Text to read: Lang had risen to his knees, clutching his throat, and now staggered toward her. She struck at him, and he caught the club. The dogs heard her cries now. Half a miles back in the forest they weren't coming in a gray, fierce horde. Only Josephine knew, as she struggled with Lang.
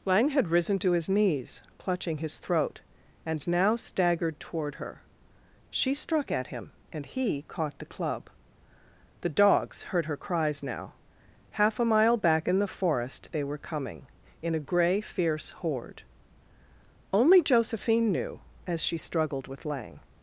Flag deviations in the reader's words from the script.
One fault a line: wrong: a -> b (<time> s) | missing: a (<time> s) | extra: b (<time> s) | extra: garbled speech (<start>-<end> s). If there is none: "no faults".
wrong: miles -> mile (11.8 s)
wrong: weren't -> were (13.4 s)